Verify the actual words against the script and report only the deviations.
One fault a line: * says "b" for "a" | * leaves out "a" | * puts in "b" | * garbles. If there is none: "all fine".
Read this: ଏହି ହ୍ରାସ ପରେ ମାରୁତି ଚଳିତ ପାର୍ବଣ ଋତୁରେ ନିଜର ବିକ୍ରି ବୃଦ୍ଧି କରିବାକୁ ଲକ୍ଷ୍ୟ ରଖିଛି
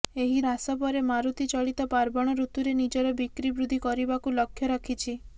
all fine